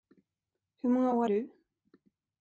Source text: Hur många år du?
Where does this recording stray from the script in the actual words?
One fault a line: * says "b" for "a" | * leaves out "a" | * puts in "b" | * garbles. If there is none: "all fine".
all fine